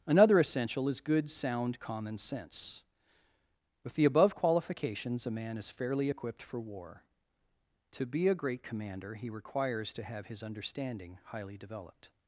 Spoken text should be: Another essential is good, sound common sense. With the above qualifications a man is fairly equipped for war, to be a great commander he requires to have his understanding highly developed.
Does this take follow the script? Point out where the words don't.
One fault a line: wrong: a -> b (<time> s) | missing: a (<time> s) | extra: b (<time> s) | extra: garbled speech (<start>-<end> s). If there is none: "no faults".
no faults